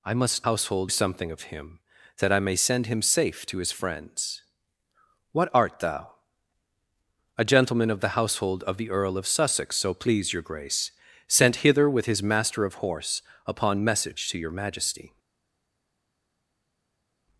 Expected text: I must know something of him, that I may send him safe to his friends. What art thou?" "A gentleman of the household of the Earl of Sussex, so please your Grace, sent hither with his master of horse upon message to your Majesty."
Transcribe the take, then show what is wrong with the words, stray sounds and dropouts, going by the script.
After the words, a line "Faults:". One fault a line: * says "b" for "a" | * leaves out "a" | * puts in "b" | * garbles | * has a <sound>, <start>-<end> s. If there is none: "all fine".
I must household something of him, that I may send him safe to his friends. What art thou?" "A gentleman of the household of the Earl of Sussex, so please your Grace, sent hither with his master of horse upon message to your Majesty."
Faults:
* says "household" for "know"